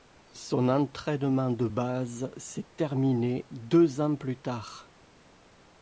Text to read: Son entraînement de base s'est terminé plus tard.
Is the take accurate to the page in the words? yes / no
no